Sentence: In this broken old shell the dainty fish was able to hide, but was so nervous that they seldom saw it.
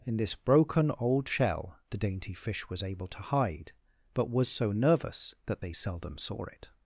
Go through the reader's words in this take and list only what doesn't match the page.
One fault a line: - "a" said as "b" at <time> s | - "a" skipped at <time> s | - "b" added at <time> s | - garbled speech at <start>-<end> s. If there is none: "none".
none